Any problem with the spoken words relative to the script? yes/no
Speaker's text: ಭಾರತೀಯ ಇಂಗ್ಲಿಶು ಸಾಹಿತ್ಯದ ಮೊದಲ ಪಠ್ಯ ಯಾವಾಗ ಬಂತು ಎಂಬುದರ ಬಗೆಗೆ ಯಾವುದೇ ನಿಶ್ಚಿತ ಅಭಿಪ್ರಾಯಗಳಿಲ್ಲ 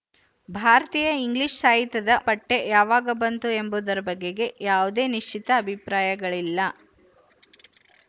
yes